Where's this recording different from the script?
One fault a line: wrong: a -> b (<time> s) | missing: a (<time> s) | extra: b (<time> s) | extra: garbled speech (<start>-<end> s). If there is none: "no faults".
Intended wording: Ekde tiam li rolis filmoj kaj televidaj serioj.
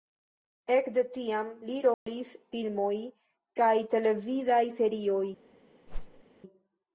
no faults